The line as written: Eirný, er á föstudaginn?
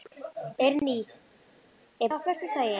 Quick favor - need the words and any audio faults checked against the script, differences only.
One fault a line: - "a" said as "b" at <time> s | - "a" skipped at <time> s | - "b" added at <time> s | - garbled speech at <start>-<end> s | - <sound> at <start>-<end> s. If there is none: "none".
none